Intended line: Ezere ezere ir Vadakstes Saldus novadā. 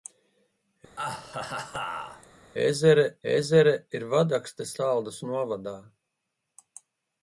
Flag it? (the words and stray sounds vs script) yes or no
yes